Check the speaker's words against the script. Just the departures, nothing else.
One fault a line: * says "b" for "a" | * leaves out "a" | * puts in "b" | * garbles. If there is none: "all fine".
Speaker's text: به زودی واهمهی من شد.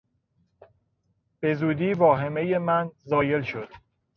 * puts in "زایل"